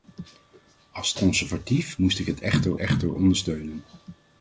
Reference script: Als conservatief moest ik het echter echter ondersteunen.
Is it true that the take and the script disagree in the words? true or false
false